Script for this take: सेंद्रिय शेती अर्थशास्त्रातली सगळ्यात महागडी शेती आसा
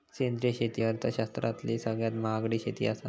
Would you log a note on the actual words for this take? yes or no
no